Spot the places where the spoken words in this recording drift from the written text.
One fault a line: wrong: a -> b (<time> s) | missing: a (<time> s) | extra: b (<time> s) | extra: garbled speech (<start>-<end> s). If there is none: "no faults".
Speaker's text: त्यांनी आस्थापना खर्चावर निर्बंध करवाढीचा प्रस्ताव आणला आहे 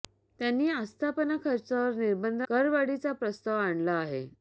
no faults